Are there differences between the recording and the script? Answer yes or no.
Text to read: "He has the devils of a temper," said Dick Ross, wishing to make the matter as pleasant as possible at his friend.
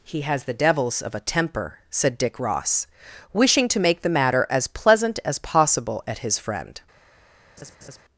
no